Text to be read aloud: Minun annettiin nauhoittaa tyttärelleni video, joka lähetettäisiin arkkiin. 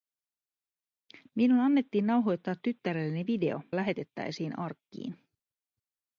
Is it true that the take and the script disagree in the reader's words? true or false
true